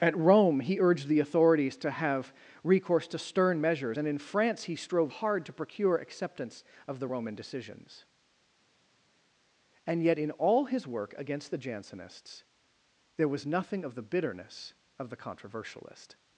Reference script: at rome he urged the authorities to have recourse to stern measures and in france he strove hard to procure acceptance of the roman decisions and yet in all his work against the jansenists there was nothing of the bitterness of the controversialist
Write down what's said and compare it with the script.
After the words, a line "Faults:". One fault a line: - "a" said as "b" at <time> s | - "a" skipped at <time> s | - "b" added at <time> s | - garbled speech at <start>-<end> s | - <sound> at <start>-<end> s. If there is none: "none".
at rome he urged the authorities to have recourse to stern measures and in france he strove hard to procure acceptance of the roman decisions and yet in all his work against the jansenists there was nothing of the bitterness of the controversialist
Faults:
none